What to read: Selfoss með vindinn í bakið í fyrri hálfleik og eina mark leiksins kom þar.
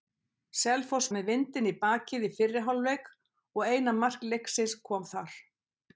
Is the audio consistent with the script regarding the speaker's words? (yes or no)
yes